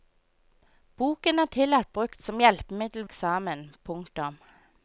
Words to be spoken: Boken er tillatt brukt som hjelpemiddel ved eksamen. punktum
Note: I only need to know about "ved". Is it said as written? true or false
false